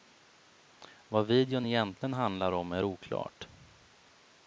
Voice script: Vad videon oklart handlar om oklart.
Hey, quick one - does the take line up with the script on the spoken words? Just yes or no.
no